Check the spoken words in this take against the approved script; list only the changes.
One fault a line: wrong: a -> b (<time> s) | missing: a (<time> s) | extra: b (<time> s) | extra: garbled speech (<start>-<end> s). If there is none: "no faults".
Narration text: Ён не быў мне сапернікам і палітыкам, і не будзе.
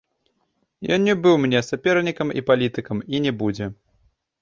no faults